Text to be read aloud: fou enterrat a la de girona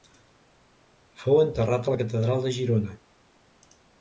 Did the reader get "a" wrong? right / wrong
right